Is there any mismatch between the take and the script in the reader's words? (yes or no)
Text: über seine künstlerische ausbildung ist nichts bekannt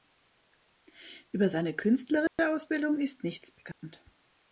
no